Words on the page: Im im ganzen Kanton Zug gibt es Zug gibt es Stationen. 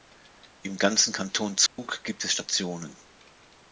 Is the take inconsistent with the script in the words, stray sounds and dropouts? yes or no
yes